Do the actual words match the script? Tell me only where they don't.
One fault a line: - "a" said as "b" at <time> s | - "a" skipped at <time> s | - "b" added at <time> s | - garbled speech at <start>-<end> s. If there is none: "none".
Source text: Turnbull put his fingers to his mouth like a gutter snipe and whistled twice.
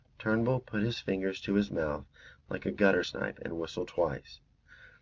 none